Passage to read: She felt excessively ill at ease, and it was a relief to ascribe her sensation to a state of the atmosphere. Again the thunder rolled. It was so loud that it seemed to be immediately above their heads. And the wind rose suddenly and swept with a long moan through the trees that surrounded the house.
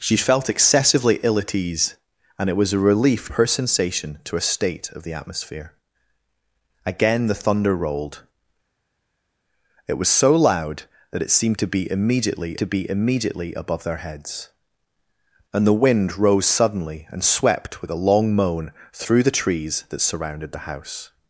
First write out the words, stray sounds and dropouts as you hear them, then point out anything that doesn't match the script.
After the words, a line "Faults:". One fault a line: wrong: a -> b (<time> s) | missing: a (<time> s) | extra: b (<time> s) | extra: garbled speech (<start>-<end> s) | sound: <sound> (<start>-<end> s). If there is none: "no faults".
She felt excessively ill at ease, and it was a relief her sensation to a state of the atmosphere. Again the thunder rolled. It was so loud that it seemed to be immediately to be immediately above their heads. And the wind rose suddenly and swept with a long moan through the trees that surrounded the house.
Faults:
missing: to ascribe (3.3 s)
extra: to be immediately (12.6 s)